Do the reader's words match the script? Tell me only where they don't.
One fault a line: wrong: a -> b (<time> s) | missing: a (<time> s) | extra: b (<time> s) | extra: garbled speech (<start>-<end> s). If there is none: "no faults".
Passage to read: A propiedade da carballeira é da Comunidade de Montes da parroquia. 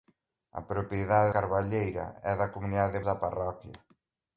missing: da (1.3 s)
missing: Montes (3.0 s)